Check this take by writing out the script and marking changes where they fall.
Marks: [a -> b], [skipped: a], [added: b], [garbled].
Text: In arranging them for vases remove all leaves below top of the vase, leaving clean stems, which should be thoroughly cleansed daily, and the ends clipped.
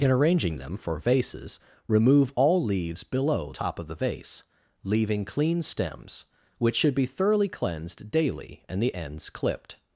In arranging them for vases remove all leaves below top of the vase, leaving clean stems, which should be thoroughly cleansed daily, and the ends clipped.